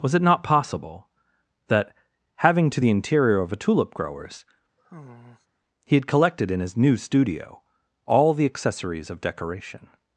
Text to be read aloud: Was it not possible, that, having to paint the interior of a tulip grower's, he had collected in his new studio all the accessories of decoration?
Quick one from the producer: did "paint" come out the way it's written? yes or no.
no